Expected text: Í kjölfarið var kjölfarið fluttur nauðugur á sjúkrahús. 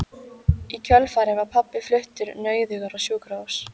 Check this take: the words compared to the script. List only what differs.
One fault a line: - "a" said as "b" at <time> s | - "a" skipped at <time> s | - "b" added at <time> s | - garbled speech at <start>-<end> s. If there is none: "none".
- "kjölfarið" said as "pabbi" at 1.6 s